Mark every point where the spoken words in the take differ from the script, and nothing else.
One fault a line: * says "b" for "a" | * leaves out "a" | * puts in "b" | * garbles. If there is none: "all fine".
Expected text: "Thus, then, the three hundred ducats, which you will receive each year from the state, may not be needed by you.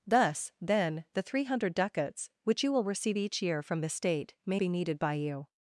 * leaves out "not"